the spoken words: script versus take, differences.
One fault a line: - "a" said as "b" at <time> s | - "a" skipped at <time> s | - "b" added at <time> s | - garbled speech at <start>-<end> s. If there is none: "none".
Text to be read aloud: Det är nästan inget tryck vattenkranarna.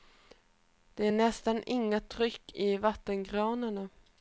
- "i" added at 2.5 s